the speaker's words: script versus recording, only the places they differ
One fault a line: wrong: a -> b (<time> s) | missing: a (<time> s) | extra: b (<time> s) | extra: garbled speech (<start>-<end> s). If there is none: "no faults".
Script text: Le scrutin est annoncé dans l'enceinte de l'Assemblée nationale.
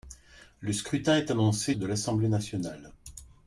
missing: dans l'enceinte (1.8 s)